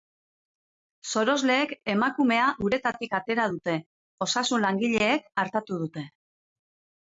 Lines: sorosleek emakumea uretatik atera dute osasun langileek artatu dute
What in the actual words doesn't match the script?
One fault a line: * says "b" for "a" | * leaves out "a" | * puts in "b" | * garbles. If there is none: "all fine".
all fine